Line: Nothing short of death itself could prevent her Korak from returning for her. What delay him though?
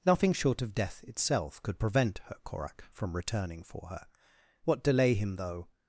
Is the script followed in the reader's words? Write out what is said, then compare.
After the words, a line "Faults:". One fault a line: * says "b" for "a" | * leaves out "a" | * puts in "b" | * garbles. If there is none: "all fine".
Nothing short of death itself could prevent her Korak from returning for her. What delay him though?
Faults:
all fine